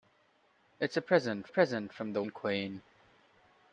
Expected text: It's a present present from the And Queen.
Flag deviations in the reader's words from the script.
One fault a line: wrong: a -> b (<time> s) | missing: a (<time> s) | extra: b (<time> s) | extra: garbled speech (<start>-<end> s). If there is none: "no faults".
no faults